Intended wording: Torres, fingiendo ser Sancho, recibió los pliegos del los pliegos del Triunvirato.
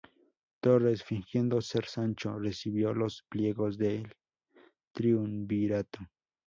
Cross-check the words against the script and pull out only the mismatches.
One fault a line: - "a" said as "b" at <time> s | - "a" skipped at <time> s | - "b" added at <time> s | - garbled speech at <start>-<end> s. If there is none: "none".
- "los pliegos del" skipped at 4.1 s